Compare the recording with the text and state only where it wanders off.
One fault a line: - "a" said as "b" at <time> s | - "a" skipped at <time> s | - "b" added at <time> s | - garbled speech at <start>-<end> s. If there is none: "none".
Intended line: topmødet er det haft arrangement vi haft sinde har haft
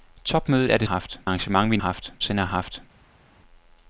none